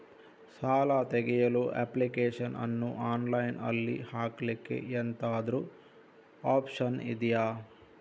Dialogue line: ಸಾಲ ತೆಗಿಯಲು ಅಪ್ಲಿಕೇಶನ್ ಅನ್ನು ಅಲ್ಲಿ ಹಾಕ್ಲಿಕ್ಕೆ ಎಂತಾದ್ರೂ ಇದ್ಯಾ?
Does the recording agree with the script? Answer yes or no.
no